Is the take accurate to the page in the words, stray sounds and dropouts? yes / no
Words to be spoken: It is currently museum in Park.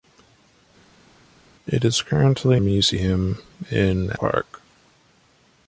yes